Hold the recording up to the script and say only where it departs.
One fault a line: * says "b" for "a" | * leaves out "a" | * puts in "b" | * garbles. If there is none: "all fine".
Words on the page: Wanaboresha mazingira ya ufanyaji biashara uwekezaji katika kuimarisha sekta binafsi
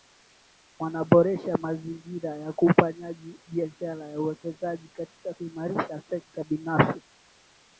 * puts in "na"